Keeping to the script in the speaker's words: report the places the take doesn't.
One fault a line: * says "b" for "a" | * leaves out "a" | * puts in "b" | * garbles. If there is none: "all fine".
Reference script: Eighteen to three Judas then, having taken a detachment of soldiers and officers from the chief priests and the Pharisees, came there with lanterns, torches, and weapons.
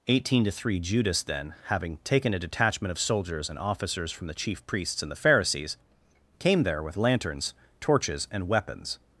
all fine